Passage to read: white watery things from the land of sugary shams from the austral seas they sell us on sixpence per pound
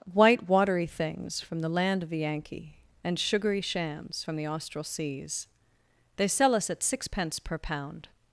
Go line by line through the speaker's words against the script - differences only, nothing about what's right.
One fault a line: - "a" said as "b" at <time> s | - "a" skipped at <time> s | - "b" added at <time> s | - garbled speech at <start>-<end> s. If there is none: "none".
- "the yankee and" added at 2.1 s
- "on" said as "at" at 6.7 s